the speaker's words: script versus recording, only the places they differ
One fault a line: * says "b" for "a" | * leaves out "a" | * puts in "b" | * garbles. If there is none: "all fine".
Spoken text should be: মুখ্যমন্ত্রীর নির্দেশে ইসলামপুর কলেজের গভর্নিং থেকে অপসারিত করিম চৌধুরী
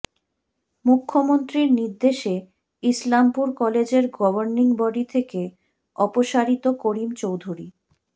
* puts in "বডি"